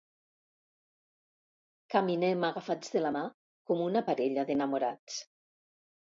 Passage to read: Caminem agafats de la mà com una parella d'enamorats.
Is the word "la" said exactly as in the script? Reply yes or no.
yes